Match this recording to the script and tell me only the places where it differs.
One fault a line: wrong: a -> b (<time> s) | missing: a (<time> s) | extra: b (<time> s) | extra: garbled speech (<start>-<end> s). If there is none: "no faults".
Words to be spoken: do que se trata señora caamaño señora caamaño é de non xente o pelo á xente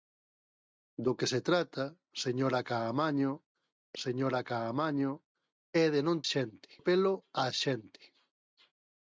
no faults